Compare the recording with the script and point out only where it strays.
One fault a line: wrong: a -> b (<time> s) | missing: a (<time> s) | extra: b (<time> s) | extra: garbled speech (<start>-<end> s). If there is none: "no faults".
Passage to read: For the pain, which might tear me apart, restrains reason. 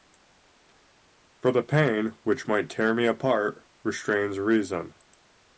no faults